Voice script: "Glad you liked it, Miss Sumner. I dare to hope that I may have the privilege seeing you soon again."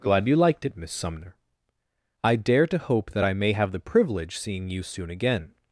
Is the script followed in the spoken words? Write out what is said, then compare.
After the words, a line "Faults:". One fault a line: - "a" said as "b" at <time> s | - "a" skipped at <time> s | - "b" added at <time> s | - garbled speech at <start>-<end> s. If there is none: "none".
"Glad you liked it, Miss Sumner. I dare to hope that I may have the privilege seeing you soon again."
Faults:
none